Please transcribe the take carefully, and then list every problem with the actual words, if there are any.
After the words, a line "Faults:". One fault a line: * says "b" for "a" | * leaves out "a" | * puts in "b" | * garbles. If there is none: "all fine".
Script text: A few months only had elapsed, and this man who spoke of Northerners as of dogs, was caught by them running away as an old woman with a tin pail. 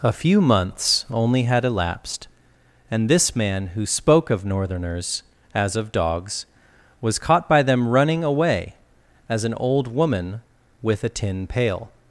A few months only had elapsed, and this man who spoke of Northerners as of dogs, was caught by them running away as an old woman with a tin pail.
Faults:
all fine